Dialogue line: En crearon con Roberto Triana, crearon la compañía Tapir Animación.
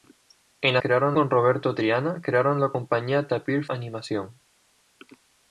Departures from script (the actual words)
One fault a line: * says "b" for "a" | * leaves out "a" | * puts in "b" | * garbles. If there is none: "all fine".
all fine